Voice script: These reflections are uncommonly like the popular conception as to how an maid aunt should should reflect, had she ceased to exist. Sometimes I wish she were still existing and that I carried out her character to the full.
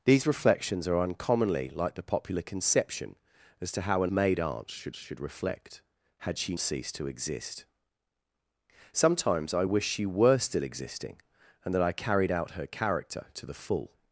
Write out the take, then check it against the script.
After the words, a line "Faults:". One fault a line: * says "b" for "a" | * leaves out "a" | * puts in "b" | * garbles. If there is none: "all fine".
These reflections are uncommonly like the popular conception as to how an maid aunt should should reflect, had she ceased to exist. Sometimes I wish she were still existing and that I carried out her character to the full.
Faults:
all fine